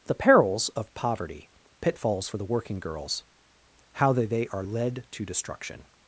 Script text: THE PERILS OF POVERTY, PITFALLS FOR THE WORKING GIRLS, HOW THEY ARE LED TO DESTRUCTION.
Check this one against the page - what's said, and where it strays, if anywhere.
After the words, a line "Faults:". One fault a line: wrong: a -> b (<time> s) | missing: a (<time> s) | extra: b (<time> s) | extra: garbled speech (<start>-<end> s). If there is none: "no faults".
THE PERILS OF POVERTY, PITFALLS FOR THE WORKING GIRLS, HOW THEY THEY ARE LED TO DESTRUCTION.
Faults:
extra: THEY (4.3 s)